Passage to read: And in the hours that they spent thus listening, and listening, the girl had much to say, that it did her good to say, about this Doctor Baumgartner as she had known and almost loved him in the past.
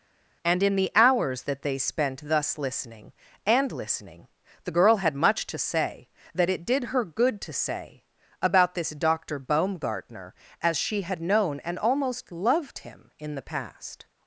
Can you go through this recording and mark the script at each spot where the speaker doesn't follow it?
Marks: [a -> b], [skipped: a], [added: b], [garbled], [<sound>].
And in the hours that they spent thus listening, and listening, the girl had much to say, that it did her good to say, about this Doctor Baumgartner as she had known and almost loved him in the past.